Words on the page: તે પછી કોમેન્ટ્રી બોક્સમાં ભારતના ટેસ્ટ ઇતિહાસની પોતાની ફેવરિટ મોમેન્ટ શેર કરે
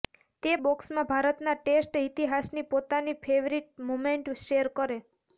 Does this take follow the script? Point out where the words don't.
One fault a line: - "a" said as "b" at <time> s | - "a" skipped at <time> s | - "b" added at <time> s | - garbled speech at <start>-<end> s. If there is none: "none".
- "પછી કોમેન્ટ્રી" skipped at 0.5 s